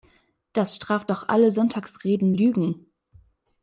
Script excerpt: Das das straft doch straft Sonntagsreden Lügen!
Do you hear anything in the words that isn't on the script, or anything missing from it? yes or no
yes